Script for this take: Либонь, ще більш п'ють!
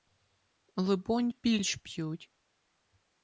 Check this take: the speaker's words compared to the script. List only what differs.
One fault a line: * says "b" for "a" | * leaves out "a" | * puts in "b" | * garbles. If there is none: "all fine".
* leaves out "ще"